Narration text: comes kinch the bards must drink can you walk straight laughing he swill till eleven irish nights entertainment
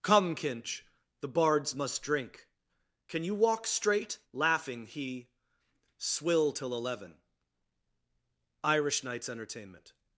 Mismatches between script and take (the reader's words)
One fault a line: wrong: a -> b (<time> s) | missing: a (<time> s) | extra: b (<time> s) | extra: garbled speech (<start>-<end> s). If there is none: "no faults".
wrong: comes -> come (0.0 s)